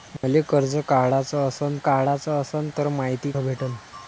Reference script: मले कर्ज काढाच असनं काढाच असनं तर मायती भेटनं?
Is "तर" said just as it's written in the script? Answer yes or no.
yes